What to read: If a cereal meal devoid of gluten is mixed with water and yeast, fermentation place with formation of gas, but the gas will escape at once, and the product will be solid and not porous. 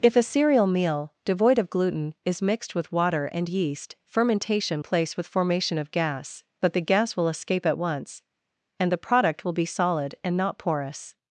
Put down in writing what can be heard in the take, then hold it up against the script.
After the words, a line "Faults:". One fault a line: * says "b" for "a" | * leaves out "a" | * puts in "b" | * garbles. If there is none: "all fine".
If a cereal meal devoid of gluten is mixed with water and yeast, fermentation place with formation of gas, but the gas will escape at once, and the product will be solid and not porous.
Faults:
all fine